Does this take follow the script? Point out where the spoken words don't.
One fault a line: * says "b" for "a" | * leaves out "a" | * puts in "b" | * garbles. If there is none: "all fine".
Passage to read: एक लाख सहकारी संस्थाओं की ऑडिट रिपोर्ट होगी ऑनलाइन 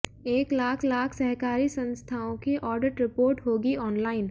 * puts in "लाख"